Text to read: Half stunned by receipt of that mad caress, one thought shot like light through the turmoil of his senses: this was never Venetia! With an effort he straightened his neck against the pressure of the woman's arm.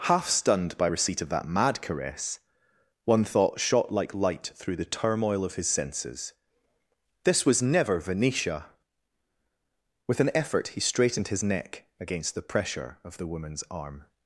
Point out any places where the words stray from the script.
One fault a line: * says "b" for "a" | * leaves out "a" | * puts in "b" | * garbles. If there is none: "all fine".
all fine